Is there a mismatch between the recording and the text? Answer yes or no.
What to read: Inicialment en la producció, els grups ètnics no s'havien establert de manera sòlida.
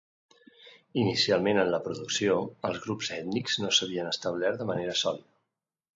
no